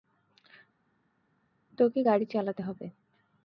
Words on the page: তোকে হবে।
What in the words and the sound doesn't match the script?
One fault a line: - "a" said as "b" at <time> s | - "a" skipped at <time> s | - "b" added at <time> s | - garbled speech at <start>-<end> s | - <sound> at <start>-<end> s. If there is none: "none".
- "গাড়ি চালাতে" added at 2.0 s